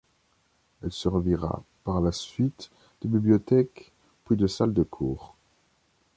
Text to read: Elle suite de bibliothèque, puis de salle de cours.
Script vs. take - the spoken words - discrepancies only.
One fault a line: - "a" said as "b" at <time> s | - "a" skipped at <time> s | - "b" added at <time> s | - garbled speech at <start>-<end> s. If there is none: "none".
- "servira par la" added at 0.9 s